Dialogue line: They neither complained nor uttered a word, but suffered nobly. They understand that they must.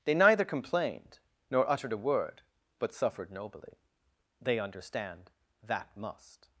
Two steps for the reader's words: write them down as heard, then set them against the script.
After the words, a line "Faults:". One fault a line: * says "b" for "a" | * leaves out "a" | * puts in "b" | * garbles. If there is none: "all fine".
They neither complained nor uttered a word, but suffered nobly. They understand that must.
Faults:
* leaves out "they"